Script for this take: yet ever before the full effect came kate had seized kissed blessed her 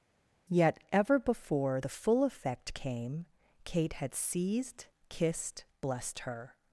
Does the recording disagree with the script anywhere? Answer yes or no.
no